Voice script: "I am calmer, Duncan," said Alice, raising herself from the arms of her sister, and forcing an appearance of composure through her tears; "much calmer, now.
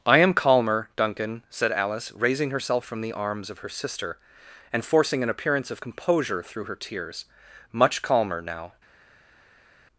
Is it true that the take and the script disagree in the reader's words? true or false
false